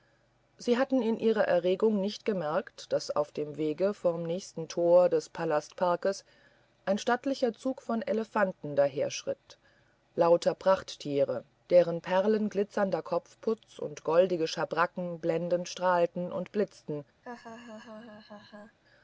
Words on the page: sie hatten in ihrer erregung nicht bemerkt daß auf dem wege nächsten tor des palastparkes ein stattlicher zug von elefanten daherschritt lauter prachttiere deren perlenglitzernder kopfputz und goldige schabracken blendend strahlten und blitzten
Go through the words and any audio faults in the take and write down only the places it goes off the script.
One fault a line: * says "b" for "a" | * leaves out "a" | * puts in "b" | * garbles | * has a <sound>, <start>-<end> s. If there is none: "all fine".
* puts in "vom"
* has a laugh, 17.2-18.8 s